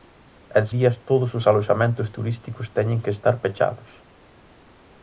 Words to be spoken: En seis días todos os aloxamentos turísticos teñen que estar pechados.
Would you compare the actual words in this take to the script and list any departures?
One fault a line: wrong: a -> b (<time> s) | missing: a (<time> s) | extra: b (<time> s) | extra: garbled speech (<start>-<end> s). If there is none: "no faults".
missing: seis (0.7 s)